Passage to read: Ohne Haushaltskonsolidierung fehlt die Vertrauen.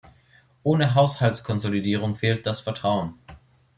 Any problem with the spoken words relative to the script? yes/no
yes